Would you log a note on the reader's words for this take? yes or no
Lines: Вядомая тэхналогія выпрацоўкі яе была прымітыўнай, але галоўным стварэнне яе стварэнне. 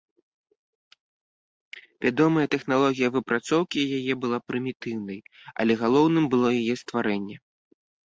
yes